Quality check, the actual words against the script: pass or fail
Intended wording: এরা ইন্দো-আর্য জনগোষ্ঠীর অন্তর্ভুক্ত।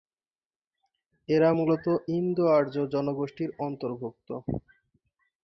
fail